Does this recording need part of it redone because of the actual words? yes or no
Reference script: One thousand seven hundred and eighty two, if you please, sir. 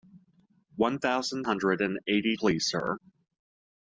yes